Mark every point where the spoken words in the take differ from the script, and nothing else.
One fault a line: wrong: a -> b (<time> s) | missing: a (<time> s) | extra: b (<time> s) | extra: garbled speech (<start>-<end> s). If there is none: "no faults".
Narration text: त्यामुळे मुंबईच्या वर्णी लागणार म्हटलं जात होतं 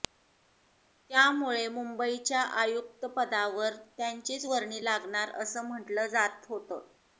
extra: आयुक्तपदावर त्यांचीच (2.6 s)
extra: असं (5.4 s)